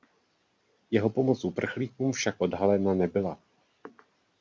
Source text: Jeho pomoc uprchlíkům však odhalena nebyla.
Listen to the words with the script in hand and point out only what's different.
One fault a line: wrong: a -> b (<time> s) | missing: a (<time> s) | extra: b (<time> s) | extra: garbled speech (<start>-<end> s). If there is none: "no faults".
no faults